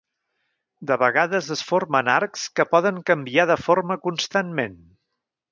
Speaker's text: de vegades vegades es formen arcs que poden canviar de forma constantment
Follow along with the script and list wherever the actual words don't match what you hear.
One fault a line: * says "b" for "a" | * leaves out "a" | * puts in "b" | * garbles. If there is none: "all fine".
* leaves out "vegades"